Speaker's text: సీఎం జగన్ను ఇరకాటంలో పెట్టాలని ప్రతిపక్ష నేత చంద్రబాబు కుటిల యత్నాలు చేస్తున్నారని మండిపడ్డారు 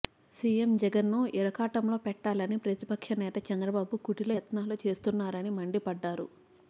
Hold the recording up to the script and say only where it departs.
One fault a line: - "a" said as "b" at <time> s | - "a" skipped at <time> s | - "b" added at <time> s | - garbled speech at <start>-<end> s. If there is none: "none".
none